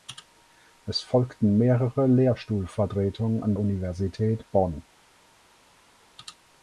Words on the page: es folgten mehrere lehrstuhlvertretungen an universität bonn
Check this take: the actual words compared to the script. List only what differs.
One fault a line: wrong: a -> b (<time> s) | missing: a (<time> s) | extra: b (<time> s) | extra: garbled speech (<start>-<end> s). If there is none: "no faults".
no faults